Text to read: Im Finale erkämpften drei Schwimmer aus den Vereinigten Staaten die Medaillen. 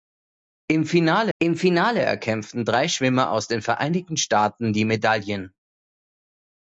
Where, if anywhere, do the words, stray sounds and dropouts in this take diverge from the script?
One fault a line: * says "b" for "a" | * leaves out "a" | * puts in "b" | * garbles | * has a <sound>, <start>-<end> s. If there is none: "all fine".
* puts in "im Finale"